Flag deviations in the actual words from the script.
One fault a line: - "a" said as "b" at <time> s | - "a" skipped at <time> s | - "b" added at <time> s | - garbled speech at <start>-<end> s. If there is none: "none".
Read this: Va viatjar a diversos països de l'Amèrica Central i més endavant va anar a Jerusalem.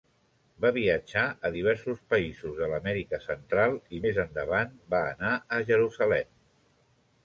none